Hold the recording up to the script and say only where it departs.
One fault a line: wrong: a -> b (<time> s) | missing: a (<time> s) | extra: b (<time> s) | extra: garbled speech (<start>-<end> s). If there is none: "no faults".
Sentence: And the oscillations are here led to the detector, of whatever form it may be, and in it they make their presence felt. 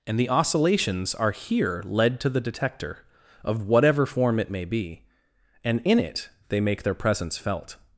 no faults